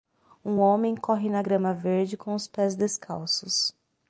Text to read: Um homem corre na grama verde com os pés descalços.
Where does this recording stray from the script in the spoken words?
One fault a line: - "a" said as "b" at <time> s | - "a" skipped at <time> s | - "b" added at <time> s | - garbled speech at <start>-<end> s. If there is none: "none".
none